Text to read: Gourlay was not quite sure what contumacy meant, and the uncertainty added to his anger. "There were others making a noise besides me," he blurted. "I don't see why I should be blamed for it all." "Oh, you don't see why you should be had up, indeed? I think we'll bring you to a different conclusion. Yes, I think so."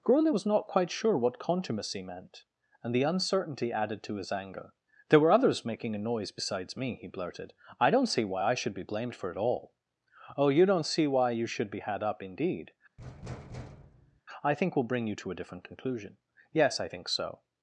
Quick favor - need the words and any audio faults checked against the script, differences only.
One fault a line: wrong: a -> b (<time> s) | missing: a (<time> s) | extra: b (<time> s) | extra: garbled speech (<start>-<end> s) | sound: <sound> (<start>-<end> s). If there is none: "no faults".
sound: thud (13.0-14.2 s)